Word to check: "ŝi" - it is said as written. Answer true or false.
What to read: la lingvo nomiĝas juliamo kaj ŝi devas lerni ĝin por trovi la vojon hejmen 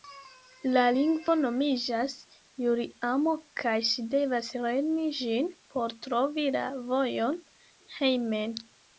true